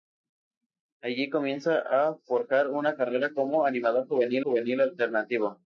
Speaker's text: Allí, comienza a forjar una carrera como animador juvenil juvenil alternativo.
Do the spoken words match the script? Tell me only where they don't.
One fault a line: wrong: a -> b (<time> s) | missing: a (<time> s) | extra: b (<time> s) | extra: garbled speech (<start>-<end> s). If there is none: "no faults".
no faults